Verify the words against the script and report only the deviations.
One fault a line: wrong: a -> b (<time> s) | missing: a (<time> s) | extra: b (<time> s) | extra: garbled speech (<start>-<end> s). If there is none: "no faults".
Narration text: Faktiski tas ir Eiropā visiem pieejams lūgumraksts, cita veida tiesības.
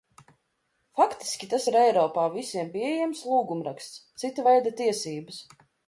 no faults